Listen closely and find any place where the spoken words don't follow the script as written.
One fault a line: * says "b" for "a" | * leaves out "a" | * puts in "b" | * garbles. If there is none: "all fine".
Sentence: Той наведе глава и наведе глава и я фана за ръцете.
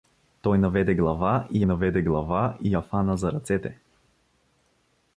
all fine